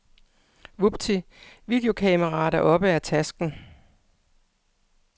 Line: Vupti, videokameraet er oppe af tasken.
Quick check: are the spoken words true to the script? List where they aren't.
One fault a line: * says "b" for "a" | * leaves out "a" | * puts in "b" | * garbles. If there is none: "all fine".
all fine